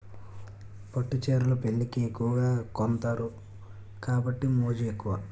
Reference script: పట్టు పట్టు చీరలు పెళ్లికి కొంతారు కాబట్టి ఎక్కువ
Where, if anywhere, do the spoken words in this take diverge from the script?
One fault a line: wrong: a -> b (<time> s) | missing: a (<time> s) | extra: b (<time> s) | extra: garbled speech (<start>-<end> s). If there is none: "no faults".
missing: పట్టు (1.2 s)
extra: ఎక్కువగా (2.0 s)
extra: మోజు (4.5 s)